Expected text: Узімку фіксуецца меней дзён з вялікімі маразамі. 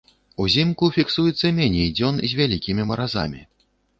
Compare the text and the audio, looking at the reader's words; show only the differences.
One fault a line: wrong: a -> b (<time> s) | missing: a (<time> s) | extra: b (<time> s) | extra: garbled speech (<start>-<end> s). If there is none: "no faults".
no faults